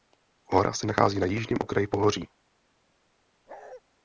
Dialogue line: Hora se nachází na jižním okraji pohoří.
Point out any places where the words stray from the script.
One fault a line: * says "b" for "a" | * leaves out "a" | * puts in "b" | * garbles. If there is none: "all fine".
all fine